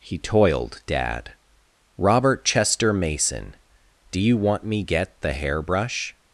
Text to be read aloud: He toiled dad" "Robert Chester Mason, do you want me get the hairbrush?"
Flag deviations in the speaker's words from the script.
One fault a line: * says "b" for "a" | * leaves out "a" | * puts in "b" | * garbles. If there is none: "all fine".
all fine